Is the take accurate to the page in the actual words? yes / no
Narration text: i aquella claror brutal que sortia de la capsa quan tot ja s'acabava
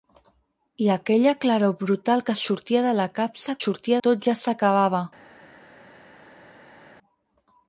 no